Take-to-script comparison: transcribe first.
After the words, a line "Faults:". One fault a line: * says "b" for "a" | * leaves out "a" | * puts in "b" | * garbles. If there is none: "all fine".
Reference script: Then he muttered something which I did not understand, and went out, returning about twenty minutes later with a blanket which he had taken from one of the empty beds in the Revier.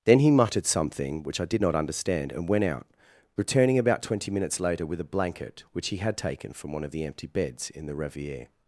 Then he muttered something which I did not understand, and went out, returning about twenty minutes later with a blanket which he had taken from one of the empty beds in the Revier.
Faults:
all fine